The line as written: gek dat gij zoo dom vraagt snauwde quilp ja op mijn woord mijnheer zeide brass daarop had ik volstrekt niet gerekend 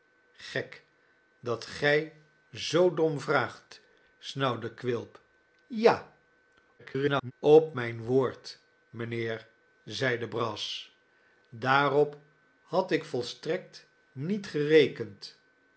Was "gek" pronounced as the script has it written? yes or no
yes